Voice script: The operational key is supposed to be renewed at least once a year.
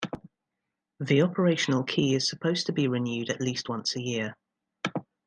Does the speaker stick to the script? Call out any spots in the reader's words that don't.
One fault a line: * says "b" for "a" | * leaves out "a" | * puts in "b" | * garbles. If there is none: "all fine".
all fine